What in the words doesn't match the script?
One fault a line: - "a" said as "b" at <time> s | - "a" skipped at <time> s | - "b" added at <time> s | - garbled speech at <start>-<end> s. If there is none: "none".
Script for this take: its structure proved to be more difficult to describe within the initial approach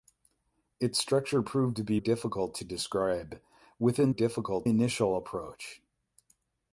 - "more" skipped at 2.0 s
- "the" said as "difficult" at 4.1 s